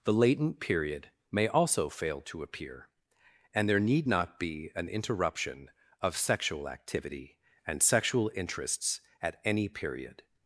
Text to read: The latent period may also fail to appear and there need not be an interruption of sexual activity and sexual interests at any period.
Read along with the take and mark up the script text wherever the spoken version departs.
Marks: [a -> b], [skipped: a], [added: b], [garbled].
The latent period may also fail to appear and there need not be an interruption of sexual activity and sexual interests at any period.